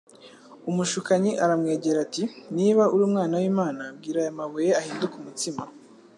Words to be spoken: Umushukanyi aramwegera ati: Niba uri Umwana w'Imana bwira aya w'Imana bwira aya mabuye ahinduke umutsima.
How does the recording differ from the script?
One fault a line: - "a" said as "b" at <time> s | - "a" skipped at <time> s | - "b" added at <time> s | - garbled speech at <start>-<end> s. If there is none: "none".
- "w'Imana bwira aya" skipped at 4.4 s